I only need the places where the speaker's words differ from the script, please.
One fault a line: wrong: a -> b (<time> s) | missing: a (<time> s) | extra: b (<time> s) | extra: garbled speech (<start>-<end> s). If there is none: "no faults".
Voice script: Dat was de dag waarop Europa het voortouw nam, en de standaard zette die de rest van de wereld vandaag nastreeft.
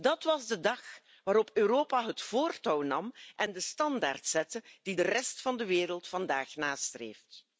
no faults